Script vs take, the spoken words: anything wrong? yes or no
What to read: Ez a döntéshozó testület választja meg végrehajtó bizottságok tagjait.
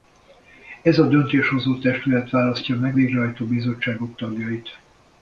no